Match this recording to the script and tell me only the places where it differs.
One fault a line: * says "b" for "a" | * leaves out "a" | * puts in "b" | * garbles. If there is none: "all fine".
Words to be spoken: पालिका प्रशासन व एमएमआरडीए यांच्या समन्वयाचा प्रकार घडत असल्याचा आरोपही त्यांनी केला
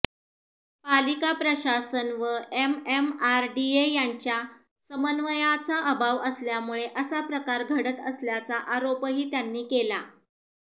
* puts in "अभाव असल्यामुळे असा"